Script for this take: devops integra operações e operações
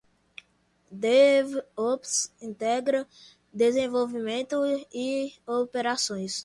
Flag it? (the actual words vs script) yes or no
yes